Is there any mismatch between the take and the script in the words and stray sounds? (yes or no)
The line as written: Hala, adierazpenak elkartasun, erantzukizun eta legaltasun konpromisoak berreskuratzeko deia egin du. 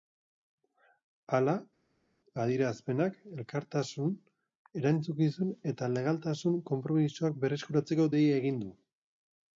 no